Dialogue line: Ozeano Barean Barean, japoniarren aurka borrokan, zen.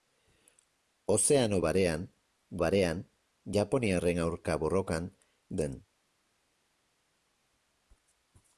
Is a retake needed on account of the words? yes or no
no